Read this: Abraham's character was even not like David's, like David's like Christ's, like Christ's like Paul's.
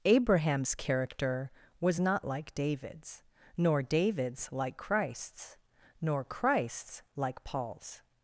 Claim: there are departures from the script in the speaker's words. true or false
true